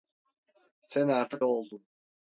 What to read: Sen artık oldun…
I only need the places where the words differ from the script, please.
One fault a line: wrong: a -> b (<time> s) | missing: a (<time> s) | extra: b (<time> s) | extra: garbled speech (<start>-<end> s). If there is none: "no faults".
no faults